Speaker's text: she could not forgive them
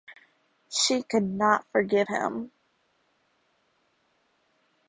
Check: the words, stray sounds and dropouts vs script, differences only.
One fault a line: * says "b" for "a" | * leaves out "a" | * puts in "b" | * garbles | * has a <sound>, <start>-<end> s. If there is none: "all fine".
* says "him" for "them"